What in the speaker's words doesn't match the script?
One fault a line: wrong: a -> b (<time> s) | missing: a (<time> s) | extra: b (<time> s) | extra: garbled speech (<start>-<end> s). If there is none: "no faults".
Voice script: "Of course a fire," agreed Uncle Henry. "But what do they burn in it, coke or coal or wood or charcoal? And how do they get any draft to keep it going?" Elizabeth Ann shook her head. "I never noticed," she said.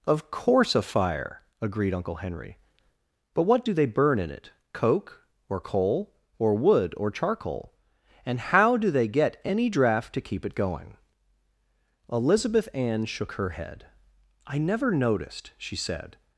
no faults